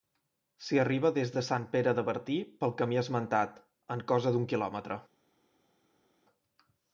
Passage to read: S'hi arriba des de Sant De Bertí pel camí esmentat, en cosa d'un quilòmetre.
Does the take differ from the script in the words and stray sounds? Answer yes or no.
yes